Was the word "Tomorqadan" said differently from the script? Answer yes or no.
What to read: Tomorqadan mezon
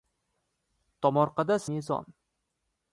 no